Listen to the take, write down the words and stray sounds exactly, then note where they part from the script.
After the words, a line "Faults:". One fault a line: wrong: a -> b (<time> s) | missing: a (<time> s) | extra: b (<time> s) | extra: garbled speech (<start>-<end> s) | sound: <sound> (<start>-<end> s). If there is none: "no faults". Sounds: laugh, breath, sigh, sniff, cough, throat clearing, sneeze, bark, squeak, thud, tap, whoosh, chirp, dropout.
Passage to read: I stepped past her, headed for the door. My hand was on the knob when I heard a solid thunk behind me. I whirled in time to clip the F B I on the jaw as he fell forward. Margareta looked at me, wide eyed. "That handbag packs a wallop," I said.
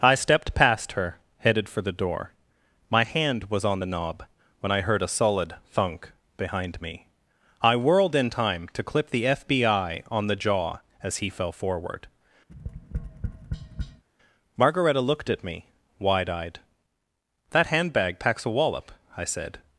I stepped past her, headed for the door. My hand was on the knob when I heard a solid thunk behind me. I whirled in time to clip the F B I on the jaw as he fell forward. Margareta looked at me, wide eyed. "That handbag packs a wallop," I said.
Faults:
sound: tap (12.5-14.0 s)